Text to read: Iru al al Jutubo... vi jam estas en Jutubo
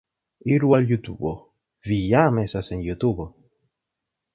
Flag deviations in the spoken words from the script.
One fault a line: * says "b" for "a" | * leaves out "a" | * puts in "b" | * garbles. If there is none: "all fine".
* leaves out "al"